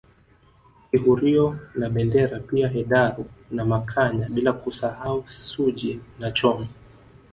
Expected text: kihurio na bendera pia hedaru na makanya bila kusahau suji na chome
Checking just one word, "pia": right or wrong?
right